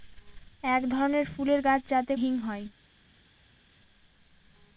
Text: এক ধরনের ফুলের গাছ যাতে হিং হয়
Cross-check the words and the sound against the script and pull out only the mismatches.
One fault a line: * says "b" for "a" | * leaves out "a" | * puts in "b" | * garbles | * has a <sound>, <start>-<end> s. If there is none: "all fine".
all fine